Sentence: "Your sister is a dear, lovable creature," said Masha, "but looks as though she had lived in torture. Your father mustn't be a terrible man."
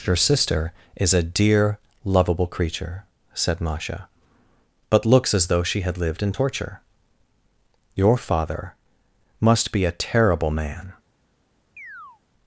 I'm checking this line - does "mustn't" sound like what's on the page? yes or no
no